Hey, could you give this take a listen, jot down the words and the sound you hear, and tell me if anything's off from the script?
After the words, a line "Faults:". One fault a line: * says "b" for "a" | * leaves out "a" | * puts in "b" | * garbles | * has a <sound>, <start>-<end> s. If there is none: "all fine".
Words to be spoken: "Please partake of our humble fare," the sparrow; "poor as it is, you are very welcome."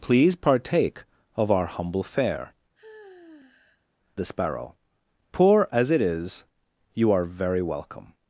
"Please partake of our humble fare," the sparrow; "poor as it is, you are very welcome."
Faults:
* has a sigh, 2.8-3.9 s